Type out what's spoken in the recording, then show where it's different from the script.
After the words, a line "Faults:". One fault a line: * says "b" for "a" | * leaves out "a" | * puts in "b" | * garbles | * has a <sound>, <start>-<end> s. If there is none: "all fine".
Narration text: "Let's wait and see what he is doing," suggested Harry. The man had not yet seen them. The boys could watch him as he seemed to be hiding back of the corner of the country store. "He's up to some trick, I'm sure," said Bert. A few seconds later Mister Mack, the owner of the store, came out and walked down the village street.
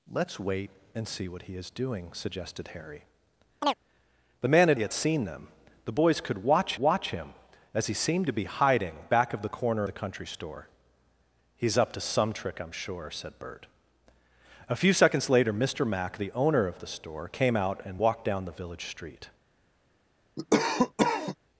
"Let's wait and see what he is doing," suggested Harry. The man had yet seen them. The boys could watch watch him as he seemed to be hiding back of the corner the country store. "He's up to some trick, I'm sure," said Bert. A few seconds later Mister Mack, the owner of the store, came out and walked down the village street.
Faults:
* has a chirp, 3.6-3.7 s
* leaves out "not"
* puts in "watch"
* leaves out "of"
* has a cough, 20.4-21.4 s